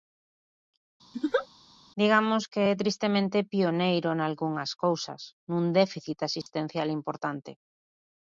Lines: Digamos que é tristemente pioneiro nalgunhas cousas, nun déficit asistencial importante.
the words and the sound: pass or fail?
fail